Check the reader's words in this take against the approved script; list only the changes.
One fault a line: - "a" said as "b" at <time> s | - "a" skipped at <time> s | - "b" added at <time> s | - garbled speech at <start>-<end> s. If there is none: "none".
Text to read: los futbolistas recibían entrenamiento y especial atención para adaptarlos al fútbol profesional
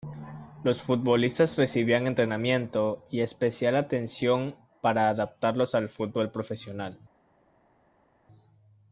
none